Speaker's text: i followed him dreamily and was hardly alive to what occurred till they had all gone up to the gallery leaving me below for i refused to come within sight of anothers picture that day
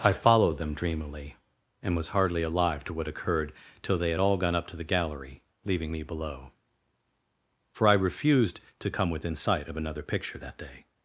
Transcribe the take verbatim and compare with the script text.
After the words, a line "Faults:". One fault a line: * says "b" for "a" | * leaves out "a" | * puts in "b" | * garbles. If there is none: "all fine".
i followed them dreamily and was hardly alive to what occurred till they had all gone up to the gallery leaving me below for i refused to come within sight of another picture that day
Faults:
* says "them" for "him"
* says "another" for "anothers"